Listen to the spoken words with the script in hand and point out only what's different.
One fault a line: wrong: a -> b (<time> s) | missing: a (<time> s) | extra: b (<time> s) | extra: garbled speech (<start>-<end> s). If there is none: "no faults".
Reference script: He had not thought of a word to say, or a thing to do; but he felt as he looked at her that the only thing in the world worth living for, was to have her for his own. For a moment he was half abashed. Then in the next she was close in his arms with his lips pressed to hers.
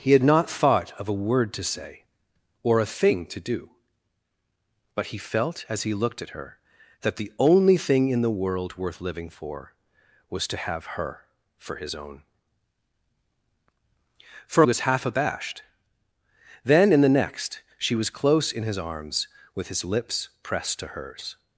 missing: a moment he (14.6 s)